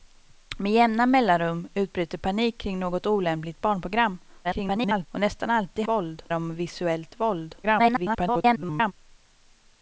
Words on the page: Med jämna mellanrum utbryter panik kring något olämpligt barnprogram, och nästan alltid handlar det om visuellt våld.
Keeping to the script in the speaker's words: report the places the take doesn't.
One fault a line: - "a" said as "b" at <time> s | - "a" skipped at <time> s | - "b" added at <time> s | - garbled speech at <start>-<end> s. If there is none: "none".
- garbled speech at 4.4-5.1 s
- "handlar" said as "våld" at 5.9 s
- garbled speech at 7.6-8.9 s